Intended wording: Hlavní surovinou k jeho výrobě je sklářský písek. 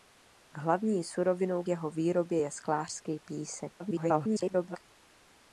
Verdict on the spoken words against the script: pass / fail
fail